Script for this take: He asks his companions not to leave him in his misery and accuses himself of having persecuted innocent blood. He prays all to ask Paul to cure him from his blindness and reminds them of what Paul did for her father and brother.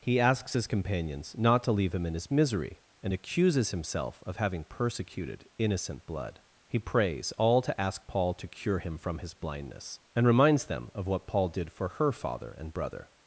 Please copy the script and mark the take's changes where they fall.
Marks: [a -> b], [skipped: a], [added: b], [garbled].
He asks his companions not to leave him in his misery and accuses himself of having persecuted innocent blood. He prays all to ask Paul to cure him from his blindness and reminds them of what Paul did for her father and brother.